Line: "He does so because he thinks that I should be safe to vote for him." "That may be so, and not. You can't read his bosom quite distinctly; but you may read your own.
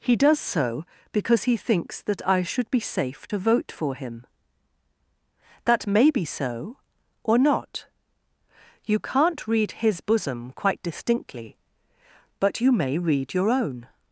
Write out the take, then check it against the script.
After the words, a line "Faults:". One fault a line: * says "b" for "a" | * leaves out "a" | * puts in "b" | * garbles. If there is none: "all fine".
"He does so because he thinks that I should be safe to vote for him." "That may be so, or not. You can't read his bosom quite distinctly; but you may read your own.
Faults:
* says "or" for "and"